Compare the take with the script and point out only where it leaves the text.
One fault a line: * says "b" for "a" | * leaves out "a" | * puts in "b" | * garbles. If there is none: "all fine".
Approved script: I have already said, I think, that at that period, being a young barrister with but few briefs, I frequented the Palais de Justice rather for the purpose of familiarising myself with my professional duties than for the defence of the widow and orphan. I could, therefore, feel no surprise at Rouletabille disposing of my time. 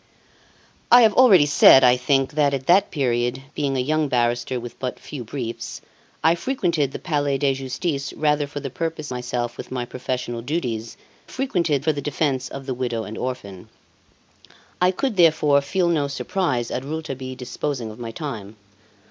* leaves out "of familiarising"
* says "frequented" for "than"